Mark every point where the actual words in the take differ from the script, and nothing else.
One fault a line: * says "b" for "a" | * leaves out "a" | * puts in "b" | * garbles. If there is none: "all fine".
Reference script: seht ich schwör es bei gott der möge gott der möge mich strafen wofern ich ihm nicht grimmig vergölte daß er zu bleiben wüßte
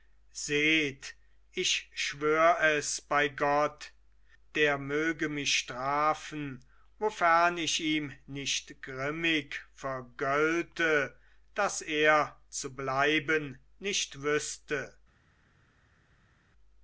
* leaves out "gott der möge"
* puts in "nicht"